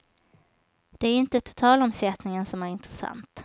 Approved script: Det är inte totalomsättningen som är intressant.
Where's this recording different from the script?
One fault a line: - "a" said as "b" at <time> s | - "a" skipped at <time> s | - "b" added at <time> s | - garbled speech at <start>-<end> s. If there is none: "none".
none